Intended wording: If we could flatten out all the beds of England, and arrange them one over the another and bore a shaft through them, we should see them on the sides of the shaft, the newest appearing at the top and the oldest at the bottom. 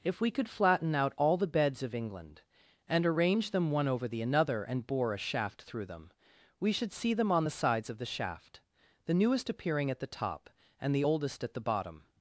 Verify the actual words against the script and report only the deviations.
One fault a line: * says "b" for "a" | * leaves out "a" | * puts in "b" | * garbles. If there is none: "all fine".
all fine